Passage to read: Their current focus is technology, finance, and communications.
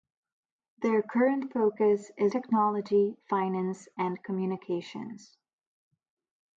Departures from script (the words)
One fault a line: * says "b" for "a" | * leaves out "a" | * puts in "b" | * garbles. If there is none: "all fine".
all fine